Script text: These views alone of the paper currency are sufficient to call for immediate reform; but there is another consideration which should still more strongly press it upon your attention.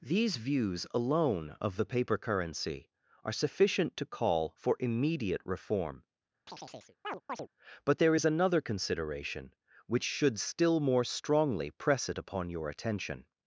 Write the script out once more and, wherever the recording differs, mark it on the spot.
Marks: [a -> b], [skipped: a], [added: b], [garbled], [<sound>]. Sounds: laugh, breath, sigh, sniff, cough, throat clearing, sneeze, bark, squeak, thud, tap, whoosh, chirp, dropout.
These views alone of the paper currency are sufficient to call for immediate reform; [chirp] but there is another consideration which should still more strongly press it upon your attention.